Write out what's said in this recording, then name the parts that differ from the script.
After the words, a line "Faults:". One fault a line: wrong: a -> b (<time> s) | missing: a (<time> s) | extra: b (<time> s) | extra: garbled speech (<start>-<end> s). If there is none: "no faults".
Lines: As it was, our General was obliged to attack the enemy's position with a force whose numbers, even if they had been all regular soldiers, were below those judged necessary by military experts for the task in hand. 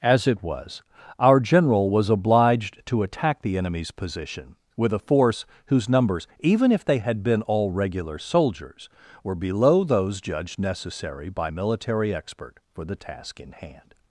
As it was, our General was obliged to attack the enemy's position with a force whose numbers, even if they had been all regular soldiers, were below those judged necessary by military expert for the task in hand.
Faults:
wrong: experts -> expert (12.1 s)